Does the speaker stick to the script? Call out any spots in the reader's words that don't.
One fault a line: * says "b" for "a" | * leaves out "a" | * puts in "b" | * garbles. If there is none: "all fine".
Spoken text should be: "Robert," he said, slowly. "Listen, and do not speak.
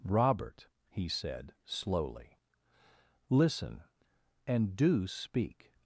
* leaves out "not"